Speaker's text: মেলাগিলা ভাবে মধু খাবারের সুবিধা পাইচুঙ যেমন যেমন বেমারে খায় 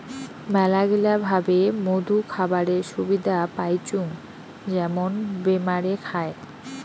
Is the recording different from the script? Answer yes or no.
yes